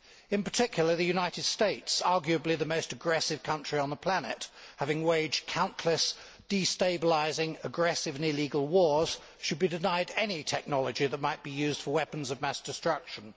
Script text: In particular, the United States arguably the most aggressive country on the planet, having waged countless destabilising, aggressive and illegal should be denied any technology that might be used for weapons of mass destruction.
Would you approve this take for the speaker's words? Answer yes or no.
no